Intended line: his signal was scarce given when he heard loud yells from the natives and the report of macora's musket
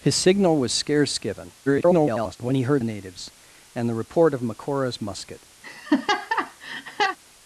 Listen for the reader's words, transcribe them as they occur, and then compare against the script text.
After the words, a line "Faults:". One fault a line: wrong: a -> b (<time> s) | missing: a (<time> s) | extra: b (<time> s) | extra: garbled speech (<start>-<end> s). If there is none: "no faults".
his signal was scarce given [garbled] when he heard the natives and the report of macora's musket
Faults:
extra: garbled speech (1.7-2.4 s)
missing: loud yells from (2.8 s)